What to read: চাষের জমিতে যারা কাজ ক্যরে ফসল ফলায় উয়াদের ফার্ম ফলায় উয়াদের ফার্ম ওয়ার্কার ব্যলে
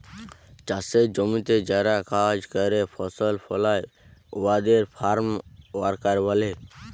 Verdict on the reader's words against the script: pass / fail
fail